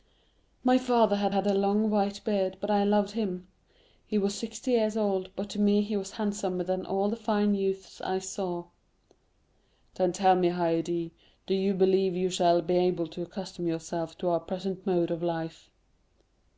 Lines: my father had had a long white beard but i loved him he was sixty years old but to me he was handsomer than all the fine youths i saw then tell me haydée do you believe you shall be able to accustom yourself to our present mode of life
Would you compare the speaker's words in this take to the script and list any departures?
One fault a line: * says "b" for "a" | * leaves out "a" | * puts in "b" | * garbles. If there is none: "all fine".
all fine